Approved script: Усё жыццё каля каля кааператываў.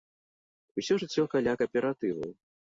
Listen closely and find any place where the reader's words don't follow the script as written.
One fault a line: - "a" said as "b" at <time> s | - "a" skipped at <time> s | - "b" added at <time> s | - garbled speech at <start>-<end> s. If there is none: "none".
- "каля" skipped at 1.5 s